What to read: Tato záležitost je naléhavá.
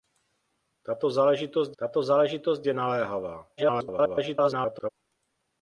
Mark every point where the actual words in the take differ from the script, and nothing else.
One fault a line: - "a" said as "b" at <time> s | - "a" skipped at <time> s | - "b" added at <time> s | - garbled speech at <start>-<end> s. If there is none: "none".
- "tato záležitost" added at 1.8 s
- garbled speech at 3.6-4.9 s